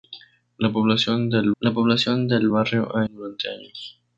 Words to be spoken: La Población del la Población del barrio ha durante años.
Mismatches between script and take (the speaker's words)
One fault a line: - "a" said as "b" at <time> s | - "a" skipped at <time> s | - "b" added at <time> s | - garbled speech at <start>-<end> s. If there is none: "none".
none